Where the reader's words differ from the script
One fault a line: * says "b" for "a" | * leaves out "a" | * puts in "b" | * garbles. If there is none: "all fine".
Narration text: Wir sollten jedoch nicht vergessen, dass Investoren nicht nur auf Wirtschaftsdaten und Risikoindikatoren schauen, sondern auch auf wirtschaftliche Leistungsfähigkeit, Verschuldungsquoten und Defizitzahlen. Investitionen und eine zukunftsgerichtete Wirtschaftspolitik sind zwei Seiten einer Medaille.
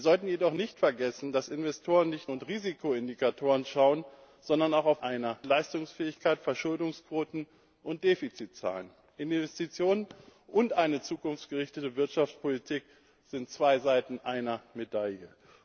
* leaves out "nur auf Wirtschaftsdaten"
* says "einer" for "wirtschaftliche"